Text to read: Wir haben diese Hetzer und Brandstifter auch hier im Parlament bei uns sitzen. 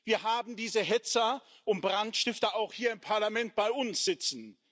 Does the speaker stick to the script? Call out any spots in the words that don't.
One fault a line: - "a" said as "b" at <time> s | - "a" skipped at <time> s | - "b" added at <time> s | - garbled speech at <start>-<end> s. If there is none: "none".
none